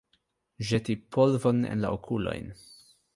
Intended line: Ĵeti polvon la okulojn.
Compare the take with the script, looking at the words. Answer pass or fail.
fail